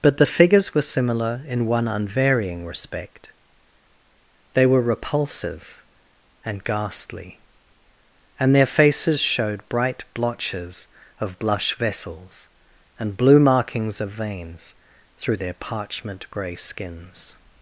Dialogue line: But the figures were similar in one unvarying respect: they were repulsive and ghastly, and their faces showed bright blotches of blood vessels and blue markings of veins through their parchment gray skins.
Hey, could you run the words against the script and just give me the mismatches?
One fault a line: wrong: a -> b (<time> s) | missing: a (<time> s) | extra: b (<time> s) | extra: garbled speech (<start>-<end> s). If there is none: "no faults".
wrong: blood -> blush (11.4 s)